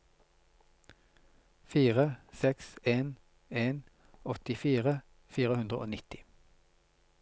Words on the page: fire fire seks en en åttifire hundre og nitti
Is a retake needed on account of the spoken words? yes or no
yes